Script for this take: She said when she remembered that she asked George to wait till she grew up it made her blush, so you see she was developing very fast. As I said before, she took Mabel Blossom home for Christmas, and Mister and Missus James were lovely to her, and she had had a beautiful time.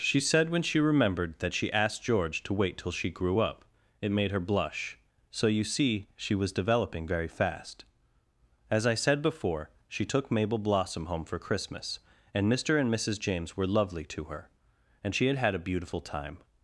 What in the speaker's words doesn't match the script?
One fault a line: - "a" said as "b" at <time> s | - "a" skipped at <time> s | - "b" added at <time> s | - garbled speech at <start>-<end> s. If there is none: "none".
none